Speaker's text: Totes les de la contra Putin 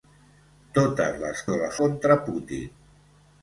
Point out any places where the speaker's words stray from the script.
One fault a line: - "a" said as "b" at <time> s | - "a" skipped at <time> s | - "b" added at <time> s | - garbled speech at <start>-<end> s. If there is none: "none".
none